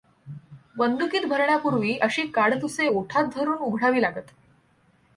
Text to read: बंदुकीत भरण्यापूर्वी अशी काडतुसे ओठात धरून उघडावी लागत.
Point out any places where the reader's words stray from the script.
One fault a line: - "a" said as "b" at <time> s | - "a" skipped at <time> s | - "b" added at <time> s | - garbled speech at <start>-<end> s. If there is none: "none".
none